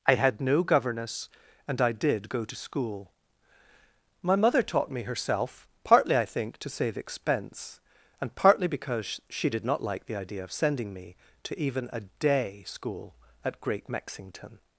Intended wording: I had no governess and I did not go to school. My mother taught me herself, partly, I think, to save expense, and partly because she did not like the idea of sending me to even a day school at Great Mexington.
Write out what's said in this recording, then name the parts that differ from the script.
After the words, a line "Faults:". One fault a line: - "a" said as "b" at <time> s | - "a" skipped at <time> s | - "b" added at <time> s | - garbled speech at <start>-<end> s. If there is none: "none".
I had no governess and I did go to school. My mother taught me herself, partly, I think, to save expense, and partly because she did not like the idea of sending me to even a day school at Great Mexington.
Faults:
- "not" skipped at 2.3 s